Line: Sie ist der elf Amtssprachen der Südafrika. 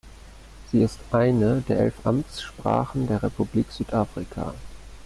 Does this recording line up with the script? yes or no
no